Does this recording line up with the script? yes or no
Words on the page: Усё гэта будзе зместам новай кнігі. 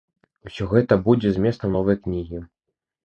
yes